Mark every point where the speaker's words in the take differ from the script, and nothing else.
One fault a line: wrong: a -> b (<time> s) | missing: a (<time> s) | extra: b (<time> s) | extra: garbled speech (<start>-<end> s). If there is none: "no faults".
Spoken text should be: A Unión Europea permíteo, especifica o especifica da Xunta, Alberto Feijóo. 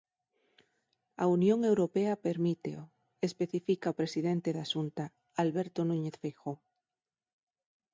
wrong: especifica -> presidente (4.0 s)
extra: Núñez (5.9 s)